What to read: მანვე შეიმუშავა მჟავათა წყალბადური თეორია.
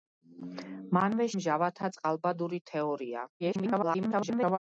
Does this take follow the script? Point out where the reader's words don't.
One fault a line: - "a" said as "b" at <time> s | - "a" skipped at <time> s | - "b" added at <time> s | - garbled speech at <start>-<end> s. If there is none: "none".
- "შეიმუშავა" skipped at 1.3 s
- garbled speech at 3.4-4.6 s